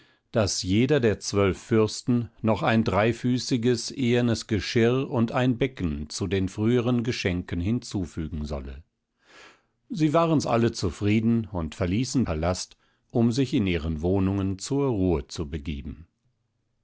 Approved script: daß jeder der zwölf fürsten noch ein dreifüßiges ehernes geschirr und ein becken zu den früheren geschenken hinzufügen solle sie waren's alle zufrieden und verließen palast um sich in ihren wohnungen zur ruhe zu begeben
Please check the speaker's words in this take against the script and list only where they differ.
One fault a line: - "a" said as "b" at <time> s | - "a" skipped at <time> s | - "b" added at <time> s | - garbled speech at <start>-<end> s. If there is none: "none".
none